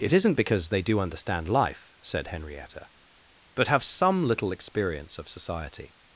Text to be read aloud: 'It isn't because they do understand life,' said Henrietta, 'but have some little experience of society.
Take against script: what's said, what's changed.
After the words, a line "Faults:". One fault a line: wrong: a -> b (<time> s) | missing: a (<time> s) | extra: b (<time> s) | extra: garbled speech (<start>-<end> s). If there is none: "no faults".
'It isn't because they do understand life,' said Henrietta, 'but have some little experience of society.
Faults:
no faults